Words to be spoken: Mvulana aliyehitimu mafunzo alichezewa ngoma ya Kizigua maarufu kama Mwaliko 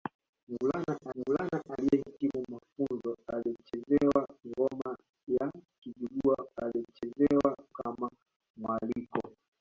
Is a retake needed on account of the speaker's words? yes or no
yes